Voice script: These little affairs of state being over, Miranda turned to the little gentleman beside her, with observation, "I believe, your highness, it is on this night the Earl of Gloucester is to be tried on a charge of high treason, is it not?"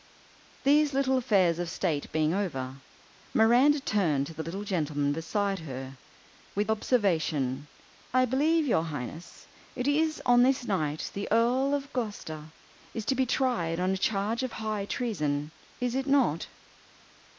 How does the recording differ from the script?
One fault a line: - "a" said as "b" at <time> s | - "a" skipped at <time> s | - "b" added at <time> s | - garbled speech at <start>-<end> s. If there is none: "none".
none